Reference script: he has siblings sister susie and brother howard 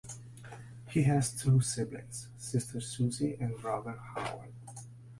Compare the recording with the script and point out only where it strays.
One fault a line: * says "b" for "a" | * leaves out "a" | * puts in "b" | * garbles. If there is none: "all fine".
* puts in "two"